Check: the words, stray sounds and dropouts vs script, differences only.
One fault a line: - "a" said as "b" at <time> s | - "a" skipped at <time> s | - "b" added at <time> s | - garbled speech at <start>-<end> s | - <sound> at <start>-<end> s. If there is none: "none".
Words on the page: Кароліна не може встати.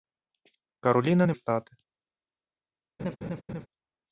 - "може" skipped at 1.3 s
- laugh at 3.0-3.7 s